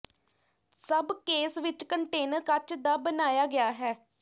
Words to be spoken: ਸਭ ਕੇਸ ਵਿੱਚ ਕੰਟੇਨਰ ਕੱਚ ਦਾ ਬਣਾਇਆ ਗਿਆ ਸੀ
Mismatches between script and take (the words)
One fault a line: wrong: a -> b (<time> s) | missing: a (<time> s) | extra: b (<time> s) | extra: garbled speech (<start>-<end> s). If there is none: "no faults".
wrong: ਸੀ -> ਹੈ (3.7 s)